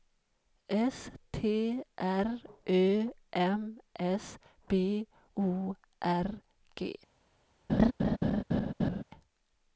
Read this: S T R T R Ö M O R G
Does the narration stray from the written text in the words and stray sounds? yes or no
yes